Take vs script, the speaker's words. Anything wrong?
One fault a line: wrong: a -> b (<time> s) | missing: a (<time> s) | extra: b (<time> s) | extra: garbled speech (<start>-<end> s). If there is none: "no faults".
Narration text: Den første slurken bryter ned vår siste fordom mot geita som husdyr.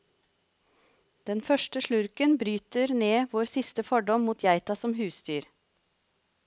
no faults